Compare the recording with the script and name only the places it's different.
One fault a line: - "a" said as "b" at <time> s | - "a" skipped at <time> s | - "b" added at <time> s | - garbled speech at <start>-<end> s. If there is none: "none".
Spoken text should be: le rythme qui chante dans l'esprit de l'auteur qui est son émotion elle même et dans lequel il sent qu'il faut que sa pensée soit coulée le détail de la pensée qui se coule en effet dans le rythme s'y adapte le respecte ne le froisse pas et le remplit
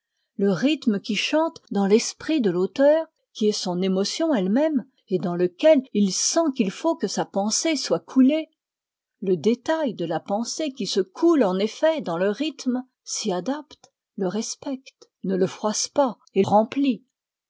- "le" skipped at 16.4 s